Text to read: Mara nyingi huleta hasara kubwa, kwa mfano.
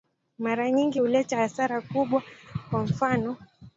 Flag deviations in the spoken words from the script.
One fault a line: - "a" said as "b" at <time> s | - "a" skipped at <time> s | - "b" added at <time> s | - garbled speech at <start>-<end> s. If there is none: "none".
none